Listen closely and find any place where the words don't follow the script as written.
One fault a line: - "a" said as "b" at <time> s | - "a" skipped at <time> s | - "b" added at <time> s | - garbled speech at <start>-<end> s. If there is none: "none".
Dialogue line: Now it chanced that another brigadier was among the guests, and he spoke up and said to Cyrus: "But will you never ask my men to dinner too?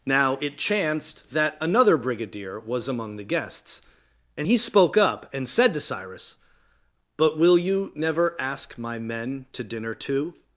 none